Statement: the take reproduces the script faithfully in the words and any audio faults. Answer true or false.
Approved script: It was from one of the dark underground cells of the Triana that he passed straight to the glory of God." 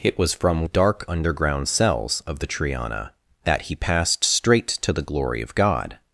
false